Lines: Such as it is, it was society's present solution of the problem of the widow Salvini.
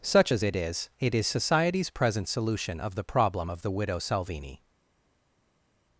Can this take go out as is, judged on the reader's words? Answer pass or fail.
fail